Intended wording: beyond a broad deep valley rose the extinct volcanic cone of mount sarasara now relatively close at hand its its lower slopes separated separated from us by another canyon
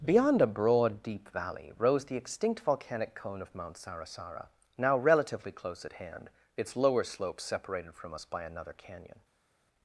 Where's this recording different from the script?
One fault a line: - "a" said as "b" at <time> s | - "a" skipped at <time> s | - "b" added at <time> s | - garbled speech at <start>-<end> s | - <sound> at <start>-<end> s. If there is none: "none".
- "its" skipped at 6.8 s
- "separated" skipped at 7.9 s